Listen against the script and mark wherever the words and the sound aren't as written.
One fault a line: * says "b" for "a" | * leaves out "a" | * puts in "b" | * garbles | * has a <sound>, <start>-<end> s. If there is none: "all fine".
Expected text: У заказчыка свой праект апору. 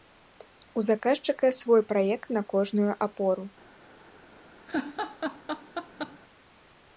* puts in "на кожную"
* has a laugh, 4.7-6.2 s